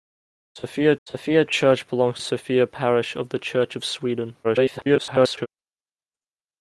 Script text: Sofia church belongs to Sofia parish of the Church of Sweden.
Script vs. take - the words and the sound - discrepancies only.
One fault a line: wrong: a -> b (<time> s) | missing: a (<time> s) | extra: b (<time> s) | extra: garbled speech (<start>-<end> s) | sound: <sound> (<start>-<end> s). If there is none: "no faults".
extra: sofia (1.1 s)
missing: to (2.2 s)
extra: garbled speech (4.4-5.5 s)